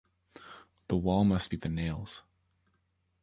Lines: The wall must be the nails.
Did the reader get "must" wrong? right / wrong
right